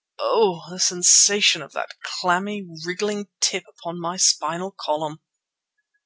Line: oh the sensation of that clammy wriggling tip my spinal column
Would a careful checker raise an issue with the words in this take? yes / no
yes